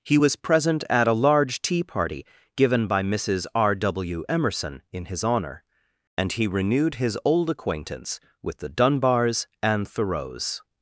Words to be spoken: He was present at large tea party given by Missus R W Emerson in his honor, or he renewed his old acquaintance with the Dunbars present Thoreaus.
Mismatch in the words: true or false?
true